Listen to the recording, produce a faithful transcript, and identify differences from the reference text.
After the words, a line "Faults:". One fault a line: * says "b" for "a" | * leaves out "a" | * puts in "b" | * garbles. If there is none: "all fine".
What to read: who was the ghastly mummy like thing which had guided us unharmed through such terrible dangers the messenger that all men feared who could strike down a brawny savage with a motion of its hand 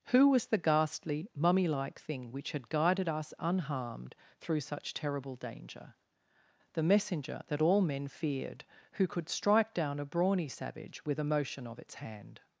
who was the ghastly mummy like thing which had guided us unharmed through such terrible danger the messenger that all men feared who could strike down a brawny savage with a motion of its hand
Faults:
* says "danger" for "dangers"